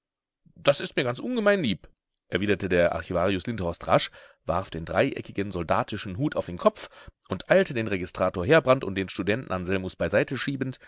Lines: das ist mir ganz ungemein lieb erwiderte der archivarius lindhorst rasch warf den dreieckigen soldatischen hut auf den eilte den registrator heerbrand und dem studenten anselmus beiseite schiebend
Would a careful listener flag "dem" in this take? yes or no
yes